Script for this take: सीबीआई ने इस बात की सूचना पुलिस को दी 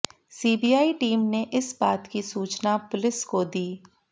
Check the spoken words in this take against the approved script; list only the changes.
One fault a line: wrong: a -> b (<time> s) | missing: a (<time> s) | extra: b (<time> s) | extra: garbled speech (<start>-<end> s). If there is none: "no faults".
extra: टीम (0.9 s)